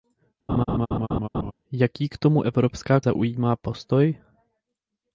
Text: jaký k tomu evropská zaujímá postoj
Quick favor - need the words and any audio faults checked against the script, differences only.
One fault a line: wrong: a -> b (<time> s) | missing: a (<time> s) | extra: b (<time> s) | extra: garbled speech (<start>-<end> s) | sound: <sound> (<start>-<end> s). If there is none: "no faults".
sound: laugh (0.5-1.5 s)